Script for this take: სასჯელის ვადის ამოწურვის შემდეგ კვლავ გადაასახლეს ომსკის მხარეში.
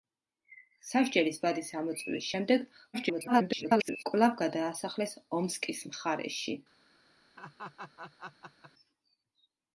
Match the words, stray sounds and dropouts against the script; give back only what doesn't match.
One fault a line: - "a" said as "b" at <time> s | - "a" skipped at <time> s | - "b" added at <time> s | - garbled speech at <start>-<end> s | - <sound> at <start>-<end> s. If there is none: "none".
- garbled speech at 2.9-4.0 s
- laugh at 7.4-8.7 s